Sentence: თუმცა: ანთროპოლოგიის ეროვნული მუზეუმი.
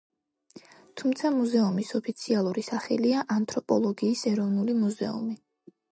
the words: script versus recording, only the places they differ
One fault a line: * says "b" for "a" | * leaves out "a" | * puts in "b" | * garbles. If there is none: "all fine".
* puts in "მუზეუმის ოფიციალური სახელია"